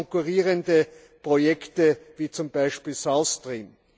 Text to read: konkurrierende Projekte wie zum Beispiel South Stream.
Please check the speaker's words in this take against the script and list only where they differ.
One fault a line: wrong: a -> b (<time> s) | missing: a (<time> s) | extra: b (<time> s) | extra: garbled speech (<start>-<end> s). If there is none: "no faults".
no faults